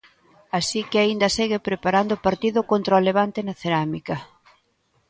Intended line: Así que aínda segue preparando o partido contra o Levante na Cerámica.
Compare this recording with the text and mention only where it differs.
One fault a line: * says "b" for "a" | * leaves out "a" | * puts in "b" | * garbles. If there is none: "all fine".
all fine